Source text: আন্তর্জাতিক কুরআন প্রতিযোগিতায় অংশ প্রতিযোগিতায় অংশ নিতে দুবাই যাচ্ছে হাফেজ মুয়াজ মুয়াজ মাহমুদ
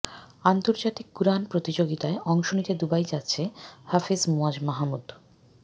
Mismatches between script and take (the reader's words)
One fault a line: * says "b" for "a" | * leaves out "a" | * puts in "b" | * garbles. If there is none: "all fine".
* leaves out "প্রতিযোগিতায় অংশ"
* leaves out "মুয়াজ"